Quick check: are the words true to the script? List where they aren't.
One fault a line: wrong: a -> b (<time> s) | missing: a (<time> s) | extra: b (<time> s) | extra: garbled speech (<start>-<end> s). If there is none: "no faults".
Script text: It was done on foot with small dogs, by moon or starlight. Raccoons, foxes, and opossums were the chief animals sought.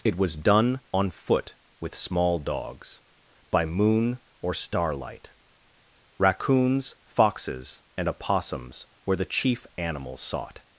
no faults